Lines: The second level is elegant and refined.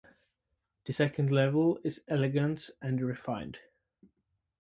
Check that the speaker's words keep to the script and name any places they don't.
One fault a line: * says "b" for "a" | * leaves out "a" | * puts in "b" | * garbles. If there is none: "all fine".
all fine